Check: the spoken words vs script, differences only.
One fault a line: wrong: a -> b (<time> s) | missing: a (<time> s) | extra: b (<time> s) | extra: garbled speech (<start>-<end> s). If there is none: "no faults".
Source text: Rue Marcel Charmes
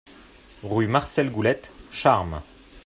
extra: Goulette (1.3 s)